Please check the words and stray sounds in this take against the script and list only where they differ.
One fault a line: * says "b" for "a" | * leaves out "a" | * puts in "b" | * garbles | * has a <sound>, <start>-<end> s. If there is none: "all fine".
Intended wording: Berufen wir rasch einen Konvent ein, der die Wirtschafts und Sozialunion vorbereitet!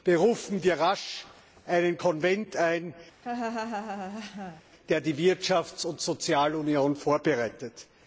* has a laugh, 3.2-4.6 s